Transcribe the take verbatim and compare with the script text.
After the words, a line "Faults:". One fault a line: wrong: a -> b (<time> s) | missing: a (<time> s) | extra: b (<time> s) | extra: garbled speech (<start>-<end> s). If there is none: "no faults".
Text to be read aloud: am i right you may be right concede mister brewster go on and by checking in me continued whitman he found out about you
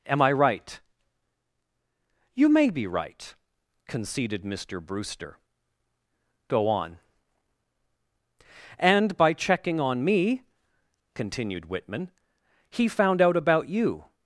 am i right you may be right conceded mister brewster go on and by checking on me continued whitman he found out about you
Faults:
wrong: concede -> conceded (3.9 s)
wrong: in -> on (9.8 s)